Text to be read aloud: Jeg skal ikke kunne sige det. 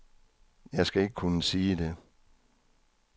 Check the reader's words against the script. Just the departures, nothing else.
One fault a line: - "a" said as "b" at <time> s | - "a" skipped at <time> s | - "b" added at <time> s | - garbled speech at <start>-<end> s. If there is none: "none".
none